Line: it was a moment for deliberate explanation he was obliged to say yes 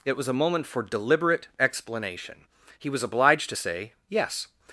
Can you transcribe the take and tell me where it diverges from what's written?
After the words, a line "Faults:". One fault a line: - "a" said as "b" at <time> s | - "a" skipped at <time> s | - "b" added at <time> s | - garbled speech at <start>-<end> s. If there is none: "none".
it was a moment for deliberate explanation he was obliged to say yes
Faults:
none